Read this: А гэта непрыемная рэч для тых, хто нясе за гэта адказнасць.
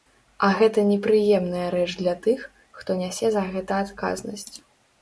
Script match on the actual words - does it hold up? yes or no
yes